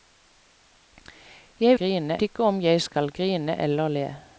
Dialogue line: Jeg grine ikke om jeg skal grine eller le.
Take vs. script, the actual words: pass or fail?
pass